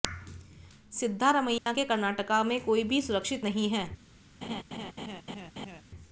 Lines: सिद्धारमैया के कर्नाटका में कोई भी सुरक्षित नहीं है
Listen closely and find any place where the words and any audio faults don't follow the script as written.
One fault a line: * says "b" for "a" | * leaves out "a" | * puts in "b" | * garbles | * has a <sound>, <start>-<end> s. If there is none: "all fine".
* has a dropout, 1.6-1.7 s
* has a laugh, 4.4-5.8 s